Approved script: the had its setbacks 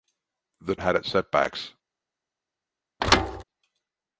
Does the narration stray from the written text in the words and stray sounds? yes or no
yes